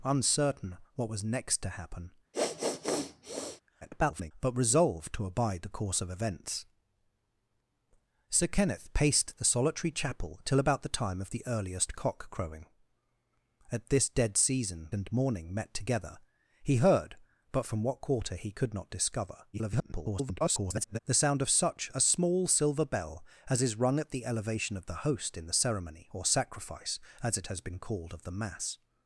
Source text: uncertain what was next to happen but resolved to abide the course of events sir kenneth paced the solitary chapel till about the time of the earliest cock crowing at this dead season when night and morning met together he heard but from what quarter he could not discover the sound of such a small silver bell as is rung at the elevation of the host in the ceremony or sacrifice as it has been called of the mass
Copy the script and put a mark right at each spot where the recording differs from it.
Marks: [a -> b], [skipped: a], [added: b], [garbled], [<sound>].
uncertain what was next to happen [sniff] [garbled] but resolved to abide the course of events sir kenneth paced the solitary chapel till about the time of the earliest cock crowing at this dead season [skipped: when night] and morning met together he heard but from what quarter he could not discover [garbled] the sound of such a small silver bell as is rung at the elevation of the host in the ceremony or sacrifice as it has been called of the mass